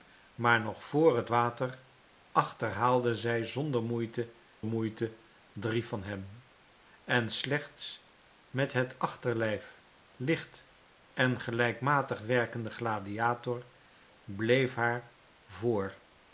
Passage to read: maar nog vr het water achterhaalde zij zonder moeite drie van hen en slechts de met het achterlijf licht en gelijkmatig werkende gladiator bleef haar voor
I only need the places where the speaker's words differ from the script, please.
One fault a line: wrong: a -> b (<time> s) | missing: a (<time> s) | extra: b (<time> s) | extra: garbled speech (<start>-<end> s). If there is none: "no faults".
extra: moeite (4.6 s)
missing: de (8.1 s)